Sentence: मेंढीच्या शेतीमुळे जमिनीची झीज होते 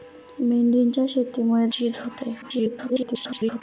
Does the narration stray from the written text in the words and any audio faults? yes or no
yes